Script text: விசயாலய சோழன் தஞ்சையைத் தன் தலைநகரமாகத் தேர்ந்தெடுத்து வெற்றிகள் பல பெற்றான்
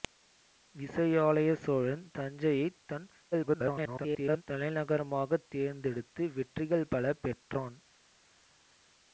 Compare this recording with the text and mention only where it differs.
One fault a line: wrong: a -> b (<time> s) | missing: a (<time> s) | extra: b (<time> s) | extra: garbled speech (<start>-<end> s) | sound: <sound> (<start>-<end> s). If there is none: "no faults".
extra: garbled speech (3.3-4.4 s)